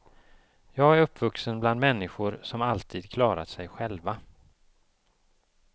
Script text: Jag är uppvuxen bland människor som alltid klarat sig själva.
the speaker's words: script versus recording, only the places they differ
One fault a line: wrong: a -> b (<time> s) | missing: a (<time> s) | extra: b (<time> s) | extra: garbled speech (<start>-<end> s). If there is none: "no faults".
no faults